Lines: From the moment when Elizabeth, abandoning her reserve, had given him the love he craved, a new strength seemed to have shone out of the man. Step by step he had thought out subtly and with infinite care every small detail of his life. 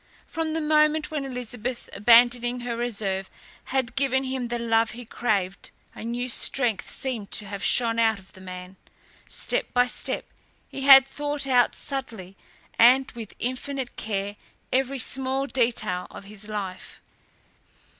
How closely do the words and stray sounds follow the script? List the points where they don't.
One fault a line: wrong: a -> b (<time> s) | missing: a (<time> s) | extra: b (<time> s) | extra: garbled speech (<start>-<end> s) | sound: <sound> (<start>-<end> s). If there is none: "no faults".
no faults